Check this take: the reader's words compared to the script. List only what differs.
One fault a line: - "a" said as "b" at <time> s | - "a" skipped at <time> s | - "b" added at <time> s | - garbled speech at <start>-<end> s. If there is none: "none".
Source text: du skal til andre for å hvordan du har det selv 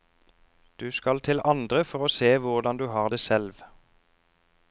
- "se" added at 2.1 s